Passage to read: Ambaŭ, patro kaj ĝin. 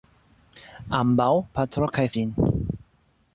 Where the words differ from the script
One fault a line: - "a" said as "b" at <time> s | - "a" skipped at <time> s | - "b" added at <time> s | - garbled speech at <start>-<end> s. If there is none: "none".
none